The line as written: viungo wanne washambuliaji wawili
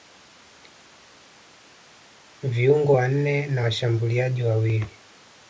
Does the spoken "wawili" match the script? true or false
true